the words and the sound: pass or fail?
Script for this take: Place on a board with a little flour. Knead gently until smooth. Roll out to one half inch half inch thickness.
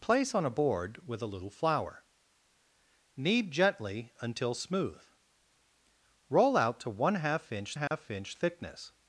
fail